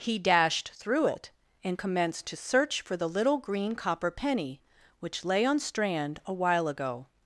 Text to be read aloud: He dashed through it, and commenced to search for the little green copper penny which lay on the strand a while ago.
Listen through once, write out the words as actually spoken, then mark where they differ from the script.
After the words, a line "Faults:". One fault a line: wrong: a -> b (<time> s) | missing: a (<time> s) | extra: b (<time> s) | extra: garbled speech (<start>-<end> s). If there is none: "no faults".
He dashed through it, and commenced to search for the little green copper penny which lay on strand a while ago.
Faults:
missing: the (5.6 s)